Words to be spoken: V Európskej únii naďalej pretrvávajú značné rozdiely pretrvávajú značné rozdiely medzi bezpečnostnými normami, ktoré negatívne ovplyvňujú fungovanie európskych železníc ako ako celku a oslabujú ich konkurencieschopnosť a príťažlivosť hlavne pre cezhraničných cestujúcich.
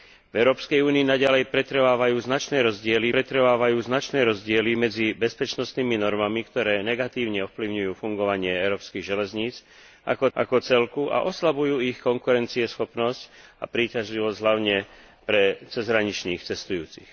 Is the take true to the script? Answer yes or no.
yes